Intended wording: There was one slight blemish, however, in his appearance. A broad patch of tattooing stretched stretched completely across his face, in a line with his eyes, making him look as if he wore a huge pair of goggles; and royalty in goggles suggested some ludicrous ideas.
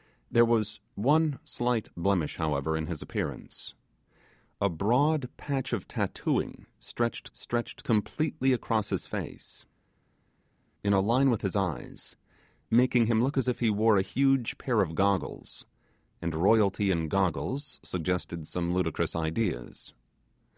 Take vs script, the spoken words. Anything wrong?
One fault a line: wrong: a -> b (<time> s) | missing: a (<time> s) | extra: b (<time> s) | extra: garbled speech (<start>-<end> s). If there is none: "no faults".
no faults